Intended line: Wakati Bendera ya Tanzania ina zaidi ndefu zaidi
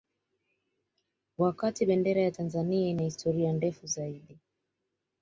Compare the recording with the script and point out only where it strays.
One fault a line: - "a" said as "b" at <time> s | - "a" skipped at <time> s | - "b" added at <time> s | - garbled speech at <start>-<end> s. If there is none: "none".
- "zaidi" said as "historia" at 3.0 s